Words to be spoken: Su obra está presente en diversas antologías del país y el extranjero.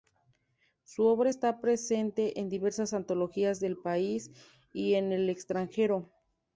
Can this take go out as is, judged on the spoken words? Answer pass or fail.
fail